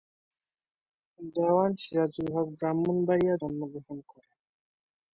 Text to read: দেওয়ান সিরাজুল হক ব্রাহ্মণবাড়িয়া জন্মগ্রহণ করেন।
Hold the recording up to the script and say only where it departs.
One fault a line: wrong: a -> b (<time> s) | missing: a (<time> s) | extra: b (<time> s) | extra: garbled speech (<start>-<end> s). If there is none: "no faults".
no faults